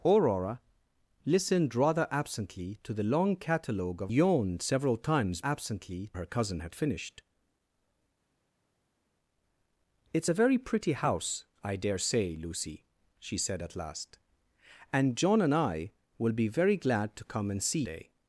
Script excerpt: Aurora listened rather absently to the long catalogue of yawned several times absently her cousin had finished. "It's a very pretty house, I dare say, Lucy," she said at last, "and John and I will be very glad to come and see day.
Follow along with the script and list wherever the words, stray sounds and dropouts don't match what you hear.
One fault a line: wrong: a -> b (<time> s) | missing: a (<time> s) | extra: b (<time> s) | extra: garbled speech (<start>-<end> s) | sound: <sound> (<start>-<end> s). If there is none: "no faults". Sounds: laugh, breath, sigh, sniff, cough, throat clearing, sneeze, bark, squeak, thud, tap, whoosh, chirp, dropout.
no faults